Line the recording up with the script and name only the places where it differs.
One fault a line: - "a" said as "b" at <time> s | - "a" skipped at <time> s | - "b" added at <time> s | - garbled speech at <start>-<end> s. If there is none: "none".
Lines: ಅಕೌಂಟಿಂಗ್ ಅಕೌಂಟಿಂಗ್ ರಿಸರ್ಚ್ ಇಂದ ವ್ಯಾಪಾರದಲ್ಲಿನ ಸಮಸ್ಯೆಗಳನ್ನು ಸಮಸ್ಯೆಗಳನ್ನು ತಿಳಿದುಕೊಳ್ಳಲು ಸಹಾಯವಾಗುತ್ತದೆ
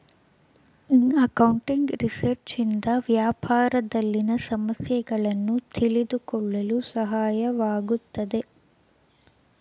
- "ಅಕೌಂಟಿಂಗ್" skipped at 1.9 s
- "ಸಮಸ್ಯೆಗಳನ್ನು" skipped at 5.6 s